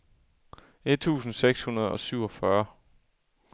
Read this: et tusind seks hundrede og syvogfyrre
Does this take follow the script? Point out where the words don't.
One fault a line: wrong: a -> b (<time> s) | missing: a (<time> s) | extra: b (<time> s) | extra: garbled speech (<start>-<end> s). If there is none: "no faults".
no faults